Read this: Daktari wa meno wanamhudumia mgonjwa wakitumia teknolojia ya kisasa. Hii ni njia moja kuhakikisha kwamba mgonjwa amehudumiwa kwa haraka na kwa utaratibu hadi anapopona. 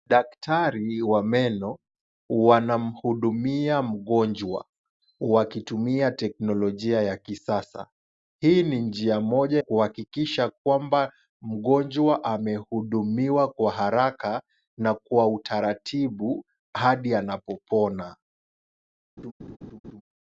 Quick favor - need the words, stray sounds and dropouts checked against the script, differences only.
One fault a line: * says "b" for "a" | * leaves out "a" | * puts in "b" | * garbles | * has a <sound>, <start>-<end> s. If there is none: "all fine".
* has a laugh, 19.2-20.0 s